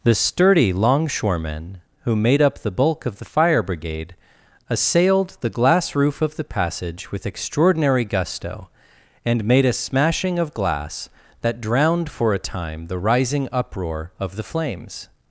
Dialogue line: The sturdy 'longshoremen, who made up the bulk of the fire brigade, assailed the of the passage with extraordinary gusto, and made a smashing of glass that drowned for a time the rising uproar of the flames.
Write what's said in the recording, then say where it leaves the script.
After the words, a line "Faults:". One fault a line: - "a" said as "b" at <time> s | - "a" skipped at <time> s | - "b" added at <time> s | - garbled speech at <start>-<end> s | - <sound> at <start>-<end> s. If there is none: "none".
The sturdy 'longshoremen, who made up the bulk of the fire brigade, assailed the glass roof of the passage with extraordinary gusto, and made a smashing of glass that drowned for a time the rising uproar of the flames.
Faults:
- "glass roof" added at 5.5 s